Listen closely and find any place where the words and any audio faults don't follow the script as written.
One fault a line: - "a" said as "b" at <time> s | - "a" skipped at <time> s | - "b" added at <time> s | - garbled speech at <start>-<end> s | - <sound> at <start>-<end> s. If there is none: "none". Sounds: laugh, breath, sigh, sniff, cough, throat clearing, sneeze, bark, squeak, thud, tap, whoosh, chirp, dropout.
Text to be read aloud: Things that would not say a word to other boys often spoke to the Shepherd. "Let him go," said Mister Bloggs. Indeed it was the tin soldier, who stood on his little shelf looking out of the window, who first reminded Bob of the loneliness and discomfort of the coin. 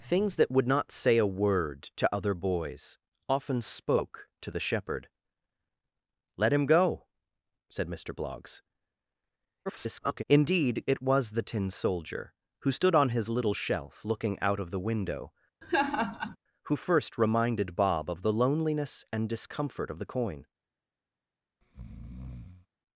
- garbled speech at 9.7-10.2 s
- laugh at 15.6-16.4 s
- breath at 21.6-22.7 s